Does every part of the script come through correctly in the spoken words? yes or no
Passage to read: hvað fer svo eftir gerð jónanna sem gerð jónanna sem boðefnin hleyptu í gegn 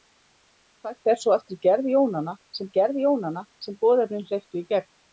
yes